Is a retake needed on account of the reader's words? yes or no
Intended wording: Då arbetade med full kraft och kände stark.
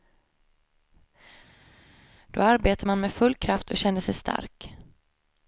yes